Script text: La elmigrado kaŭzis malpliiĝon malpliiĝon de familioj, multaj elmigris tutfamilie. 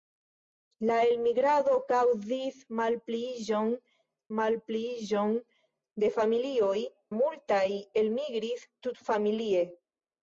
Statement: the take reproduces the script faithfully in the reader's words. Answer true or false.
true